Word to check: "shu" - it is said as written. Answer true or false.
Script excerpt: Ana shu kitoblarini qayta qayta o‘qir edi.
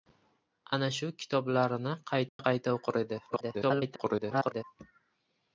true